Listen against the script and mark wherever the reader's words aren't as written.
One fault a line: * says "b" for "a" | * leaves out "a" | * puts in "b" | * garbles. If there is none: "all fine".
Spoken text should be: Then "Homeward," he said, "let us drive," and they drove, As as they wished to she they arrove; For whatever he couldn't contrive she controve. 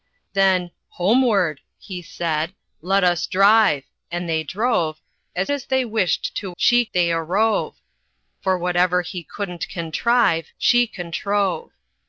all fine